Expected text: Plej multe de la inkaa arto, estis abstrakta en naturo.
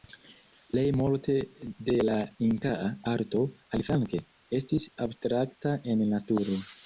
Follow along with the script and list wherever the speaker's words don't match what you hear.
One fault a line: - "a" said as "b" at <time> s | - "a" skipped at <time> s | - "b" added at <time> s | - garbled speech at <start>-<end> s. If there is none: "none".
- "aliflanke" added at 3.8 s